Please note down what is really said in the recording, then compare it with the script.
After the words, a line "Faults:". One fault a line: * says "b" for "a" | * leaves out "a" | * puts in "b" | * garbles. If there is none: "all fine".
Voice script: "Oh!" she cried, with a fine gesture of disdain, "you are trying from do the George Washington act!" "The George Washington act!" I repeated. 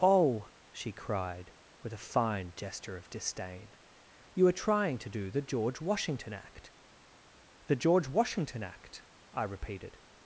"Oh!" she cried, with a fine gesture of disdain, "you are trying to do the George Washington act!" "The George Washington act!" I repeated.
Faults:
* says "to" for "from"